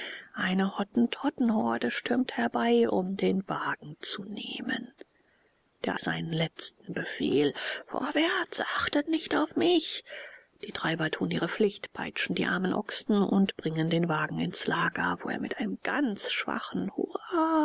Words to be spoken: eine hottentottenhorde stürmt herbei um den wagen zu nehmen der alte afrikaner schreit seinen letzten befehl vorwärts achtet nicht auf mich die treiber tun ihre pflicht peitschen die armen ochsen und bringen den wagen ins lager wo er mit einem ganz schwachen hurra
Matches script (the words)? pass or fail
fail